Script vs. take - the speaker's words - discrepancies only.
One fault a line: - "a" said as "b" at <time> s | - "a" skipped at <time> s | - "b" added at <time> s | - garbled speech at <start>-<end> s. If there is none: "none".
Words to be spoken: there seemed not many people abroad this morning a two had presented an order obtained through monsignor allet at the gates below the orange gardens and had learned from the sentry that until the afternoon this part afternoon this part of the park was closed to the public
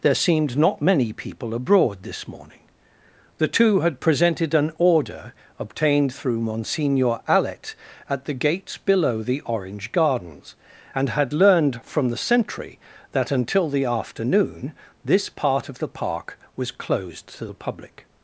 - "a" said as "the" at 3.4 s
- "afternoon this part" skipped at 15.7 s